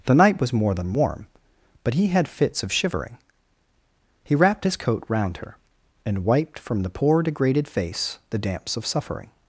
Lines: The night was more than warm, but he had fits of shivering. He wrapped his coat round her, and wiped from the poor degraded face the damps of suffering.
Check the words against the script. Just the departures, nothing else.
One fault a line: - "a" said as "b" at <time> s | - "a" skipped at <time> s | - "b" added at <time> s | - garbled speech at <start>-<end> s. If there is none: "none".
none